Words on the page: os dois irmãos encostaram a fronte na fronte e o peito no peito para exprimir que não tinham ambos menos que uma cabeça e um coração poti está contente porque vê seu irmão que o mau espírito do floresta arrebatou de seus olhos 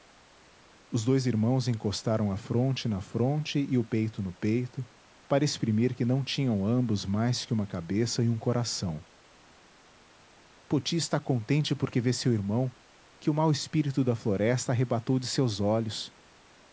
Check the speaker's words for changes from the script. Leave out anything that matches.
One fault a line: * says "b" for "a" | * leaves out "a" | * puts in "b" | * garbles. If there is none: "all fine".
* says "mais" for "menos"
* says "da" for "do"